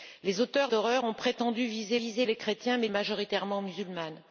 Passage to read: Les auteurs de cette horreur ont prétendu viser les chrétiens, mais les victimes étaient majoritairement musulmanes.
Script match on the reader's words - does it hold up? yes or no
no